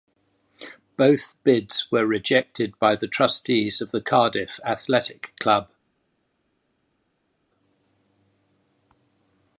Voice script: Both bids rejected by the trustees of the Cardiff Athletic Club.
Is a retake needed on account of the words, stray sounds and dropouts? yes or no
yes